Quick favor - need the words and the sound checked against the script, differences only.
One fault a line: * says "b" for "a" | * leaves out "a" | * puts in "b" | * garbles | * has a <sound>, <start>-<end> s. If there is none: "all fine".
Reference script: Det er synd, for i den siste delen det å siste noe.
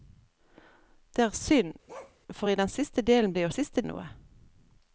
* has a bark, 1.9-2.2 s